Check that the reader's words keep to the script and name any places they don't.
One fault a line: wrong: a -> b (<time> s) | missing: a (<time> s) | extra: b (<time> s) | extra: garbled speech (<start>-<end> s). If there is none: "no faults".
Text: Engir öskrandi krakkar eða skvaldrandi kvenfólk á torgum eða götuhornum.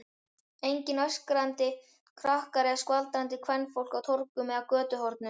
no faults